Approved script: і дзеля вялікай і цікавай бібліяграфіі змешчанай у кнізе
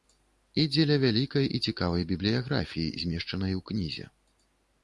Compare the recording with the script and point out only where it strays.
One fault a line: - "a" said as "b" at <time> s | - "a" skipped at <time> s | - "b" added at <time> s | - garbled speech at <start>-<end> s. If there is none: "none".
none